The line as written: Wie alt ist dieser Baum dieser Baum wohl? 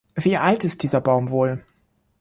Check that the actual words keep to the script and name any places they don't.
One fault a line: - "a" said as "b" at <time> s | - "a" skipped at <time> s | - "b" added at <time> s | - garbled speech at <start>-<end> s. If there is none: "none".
- "dieser Baum" skipped at 1.3 s